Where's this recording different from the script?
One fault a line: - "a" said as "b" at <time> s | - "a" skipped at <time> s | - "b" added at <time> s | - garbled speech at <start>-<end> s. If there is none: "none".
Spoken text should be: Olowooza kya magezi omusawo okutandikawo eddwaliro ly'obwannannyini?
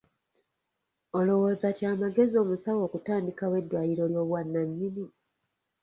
none